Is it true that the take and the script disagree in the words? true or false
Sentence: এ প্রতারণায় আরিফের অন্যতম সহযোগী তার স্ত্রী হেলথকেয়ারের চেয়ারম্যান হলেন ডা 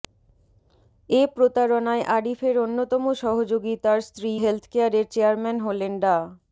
false